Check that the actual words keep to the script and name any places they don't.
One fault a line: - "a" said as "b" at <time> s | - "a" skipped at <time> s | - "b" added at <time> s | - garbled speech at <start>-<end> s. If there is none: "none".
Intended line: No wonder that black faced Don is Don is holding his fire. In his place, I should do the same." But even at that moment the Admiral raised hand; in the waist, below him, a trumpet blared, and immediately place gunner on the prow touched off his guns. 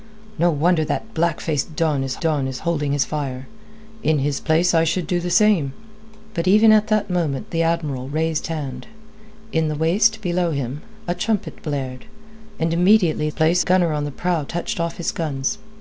none